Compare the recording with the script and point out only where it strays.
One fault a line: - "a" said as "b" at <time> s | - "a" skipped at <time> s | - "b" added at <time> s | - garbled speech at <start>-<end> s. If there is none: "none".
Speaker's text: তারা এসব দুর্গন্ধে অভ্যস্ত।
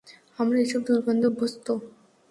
- "তারা" said as "আমরা" at 0.4 s